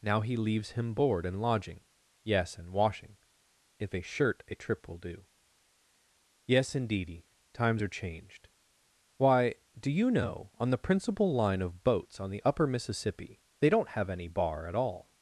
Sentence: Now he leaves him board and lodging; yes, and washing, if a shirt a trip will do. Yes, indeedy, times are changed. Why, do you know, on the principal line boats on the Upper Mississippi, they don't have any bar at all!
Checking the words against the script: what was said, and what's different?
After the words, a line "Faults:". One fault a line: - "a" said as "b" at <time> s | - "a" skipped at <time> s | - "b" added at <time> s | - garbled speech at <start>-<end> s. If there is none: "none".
Now he leaves him board and lodging; yes, and washing, if a shirt a trip will do. Yes, indeedy, times are changed. Why, do you know, on the principal line of boats on the Upper Mississippi, they don't have any bar at all!
Faults:
- "of" added at 11.6 s